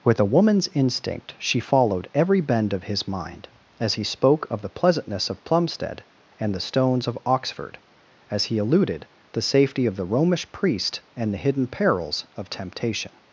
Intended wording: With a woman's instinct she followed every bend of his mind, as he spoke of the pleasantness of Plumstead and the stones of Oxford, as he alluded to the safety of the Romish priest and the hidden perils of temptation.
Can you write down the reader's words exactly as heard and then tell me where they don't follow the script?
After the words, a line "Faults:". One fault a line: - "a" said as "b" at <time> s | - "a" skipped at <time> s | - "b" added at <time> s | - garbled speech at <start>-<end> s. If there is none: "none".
With a woman's instinct she followed every bend of his mind, as he spoke of the pleasantness of Plumstead and the stones of Oxford, as he alluded the safety of the Romish priest and the hidden perils of temptation.
Faults:
- "to" skipped at 9.1 s